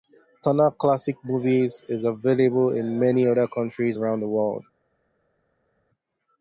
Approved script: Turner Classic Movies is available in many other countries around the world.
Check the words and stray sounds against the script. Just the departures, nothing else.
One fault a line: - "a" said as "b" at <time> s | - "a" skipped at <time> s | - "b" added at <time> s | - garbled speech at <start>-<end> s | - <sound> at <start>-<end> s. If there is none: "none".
none